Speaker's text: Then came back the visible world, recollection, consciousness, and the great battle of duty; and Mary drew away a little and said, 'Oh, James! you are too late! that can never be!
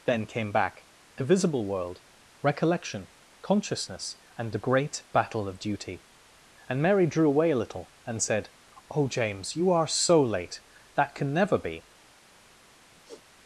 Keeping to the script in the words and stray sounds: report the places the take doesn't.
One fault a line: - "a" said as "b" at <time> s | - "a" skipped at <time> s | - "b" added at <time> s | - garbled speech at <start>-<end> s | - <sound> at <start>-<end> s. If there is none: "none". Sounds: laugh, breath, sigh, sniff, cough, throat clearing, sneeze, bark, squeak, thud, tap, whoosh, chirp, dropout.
- "too" said as "so" at 9.8 s
- sigh at 12.9-13.2 s